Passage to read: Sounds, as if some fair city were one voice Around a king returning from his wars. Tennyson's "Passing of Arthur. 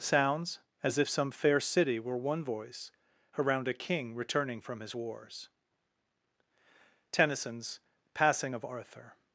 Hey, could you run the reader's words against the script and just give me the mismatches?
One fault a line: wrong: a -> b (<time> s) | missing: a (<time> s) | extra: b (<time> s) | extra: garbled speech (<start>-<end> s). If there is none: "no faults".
no faults